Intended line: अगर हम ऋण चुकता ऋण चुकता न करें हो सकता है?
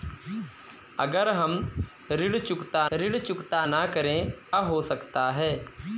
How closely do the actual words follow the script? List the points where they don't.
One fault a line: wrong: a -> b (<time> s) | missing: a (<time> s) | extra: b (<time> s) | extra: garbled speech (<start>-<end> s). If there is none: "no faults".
no faults